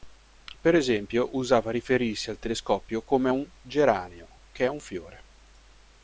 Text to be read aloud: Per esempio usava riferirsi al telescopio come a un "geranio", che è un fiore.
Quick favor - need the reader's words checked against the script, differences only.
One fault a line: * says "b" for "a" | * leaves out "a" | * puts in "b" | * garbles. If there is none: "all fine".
all fine